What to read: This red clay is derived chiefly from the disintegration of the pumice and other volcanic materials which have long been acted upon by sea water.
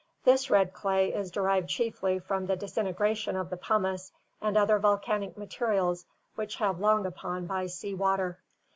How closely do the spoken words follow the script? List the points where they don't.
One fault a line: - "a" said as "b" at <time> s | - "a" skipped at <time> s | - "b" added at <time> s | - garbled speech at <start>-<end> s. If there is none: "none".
- "been acted" skipped at 7.0 s